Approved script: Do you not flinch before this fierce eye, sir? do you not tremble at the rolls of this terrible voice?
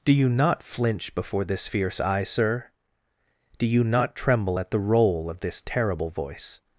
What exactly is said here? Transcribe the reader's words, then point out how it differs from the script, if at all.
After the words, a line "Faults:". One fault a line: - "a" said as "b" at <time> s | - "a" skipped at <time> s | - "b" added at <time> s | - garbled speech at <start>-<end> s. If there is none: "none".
Do you not flinch before this fierce eye, sir? do you not tremble at the roll of this terrible voice?
Faults:
- "rolls" said as "roll" at 4.8 s